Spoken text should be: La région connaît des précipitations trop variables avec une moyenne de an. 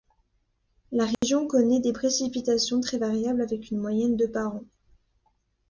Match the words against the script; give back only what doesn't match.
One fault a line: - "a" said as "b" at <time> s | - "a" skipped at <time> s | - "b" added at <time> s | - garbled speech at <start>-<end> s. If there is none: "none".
- "trop" said as "très" at 2.8 s
- "par" added at 4.3 s